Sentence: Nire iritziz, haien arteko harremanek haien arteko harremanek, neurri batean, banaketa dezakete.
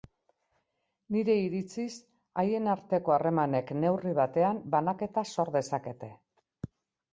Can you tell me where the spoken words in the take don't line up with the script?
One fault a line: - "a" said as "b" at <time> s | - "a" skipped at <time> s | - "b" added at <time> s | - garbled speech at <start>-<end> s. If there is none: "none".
- "haien arteko harremanek" skipped at 3.8 s
- "sor" added at 5.4 s